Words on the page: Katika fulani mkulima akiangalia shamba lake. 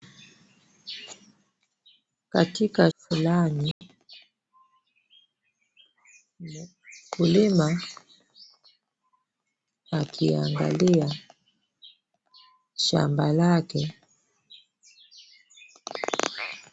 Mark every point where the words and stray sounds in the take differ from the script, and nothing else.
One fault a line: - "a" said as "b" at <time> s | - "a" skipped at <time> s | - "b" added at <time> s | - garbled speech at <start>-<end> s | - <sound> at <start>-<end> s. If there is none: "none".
- dropout at 3.7-3.8 s